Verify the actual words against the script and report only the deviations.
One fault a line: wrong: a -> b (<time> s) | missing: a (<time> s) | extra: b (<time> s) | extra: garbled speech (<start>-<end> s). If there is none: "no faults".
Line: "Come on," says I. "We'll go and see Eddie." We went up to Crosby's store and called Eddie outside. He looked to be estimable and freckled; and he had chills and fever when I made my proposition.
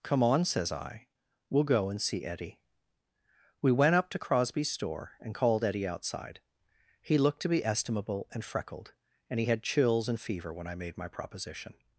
no faults